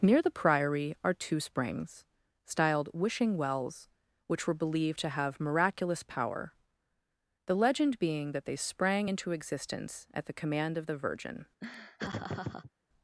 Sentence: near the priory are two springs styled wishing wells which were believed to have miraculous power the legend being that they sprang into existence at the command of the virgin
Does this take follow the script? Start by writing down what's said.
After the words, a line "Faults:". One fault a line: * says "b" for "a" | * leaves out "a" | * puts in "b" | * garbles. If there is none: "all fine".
near the priory are two springs styled wishing wells which were believed to have miraculous power the legend being that they sprang into existence at the command of the virgin
Faults:
all fine